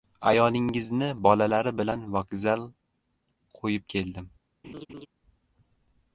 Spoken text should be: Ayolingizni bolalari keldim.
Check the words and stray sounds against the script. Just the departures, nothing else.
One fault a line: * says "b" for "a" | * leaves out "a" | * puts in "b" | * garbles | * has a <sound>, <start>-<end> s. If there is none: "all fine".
* puts in "bilan vokzal qo‘yib"
* has a laugh, 4.6-5.1 s